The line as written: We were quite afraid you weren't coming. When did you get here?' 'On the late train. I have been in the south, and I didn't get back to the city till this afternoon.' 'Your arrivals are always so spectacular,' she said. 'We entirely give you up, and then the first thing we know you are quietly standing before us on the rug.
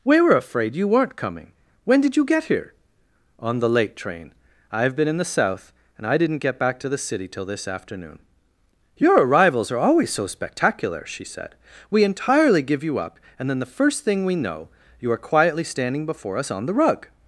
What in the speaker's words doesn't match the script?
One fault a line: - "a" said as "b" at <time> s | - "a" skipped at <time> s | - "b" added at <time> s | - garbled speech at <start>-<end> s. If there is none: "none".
- "quite" skipped at 0.3 s